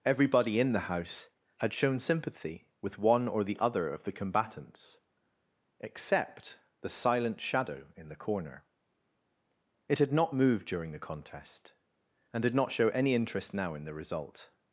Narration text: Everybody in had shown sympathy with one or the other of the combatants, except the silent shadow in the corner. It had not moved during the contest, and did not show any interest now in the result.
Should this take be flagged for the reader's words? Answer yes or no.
yes